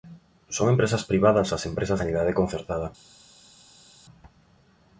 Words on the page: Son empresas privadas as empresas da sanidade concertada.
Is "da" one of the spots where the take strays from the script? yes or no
yes